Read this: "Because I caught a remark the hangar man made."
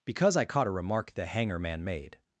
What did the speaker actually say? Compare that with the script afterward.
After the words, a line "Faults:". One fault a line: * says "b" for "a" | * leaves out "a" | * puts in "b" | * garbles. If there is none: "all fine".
"Because I caught a remark the hangar man made."
Faults:
all fine